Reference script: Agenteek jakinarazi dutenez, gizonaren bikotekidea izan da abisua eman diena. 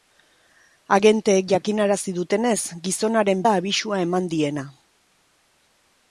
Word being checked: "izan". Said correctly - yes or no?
no